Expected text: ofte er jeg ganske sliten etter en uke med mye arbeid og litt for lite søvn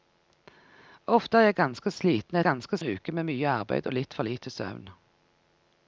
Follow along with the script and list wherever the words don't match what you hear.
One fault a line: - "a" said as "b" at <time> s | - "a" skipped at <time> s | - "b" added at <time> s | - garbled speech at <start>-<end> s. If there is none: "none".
- "etter" said as "ganske" at 2.5 s